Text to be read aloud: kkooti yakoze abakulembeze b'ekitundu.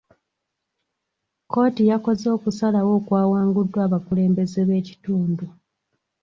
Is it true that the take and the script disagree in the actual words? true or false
true